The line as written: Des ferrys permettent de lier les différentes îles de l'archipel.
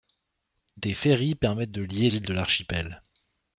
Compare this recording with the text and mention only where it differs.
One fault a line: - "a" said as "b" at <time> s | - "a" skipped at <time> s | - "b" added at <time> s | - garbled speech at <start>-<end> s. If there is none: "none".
- "les différentes" skipped at 2.1 s